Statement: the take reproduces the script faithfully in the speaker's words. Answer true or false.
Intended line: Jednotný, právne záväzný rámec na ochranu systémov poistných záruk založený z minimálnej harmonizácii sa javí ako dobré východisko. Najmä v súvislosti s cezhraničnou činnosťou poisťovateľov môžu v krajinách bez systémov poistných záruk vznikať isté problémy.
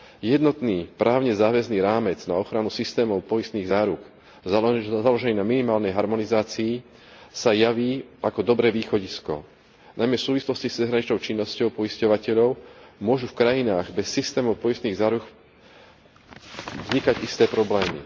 false